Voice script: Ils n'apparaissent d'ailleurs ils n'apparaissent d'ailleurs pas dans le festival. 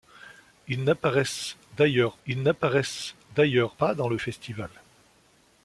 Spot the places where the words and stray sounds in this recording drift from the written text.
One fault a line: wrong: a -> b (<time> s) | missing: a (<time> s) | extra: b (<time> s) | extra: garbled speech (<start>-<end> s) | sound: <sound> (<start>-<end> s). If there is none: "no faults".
no faults